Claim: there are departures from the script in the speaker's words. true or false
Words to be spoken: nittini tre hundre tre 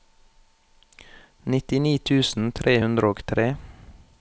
true